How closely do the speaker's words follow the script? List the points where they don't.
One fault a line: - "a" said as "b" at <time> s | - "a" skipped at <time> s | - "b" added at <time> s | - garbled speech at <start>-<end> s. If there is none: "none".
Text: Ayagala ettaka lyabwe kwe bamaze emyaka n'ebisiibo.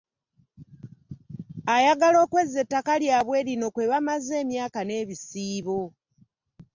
- "okwezza" added at 2.2 s
- "lino" added at 3.5 s